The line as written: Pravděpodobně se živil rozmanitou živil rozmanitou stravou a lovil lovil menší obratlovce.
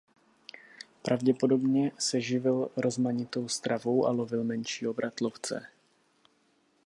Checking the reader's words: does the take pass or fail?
fail